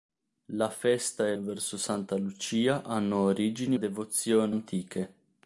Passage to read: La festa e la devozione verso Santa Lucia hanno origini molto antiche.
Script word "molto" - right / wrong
wrong